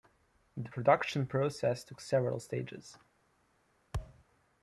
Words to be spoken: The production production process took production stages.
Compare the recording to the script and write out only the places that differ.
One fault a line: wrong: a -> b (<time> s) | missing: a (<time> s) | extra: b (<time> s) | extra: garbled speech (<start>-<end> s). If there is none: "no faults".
missing: production (1.3 s)
wrong: production -> several (2.0 s)